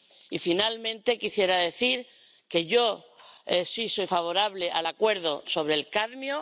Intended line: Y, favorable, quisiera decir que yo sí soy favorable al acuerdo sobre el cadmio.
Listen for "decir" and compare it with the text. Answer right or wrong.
right